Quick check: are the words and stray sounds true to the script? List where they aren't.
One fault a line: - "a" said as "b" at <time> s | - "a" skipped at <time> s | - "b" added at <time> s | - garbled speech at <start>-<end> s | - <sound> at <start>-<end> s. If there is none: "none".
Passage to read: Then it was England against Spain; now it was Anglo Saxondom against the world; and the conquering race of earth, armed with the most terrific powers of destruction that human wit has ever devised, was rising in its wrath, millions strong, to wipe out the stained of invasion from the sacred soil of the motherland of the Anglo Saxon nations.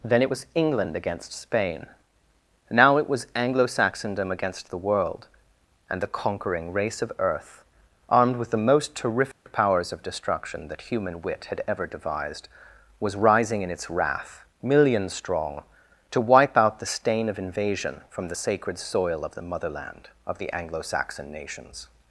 - dropout at 9.3-9.5 s
- "has" said as "had" at 11.5 s
- "stained" said as "stain" at 16.9 s